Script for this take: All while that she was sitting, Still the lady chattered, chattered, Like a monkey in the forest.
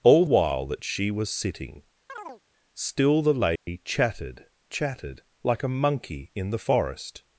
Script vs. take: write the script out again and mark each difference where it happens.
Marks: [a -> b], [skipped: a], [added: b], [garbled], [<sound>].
All while that she was sitting, [chirp] Still the lady [dropout] chattered, chattered, Like a monkey in the forest.